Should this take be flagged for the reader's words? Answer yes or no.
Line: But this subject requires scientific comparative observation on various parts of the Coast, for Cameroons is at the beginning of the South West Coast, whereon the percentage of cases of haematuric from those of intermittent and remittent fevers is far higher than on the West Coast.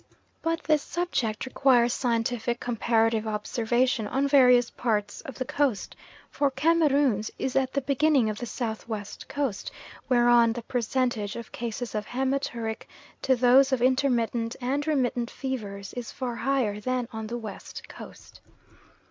yes